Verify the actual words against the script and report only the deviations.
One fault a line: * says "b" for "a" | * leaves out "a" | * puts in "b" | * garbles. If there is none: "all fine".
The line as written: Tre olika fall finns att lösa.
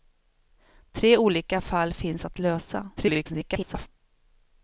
* garbles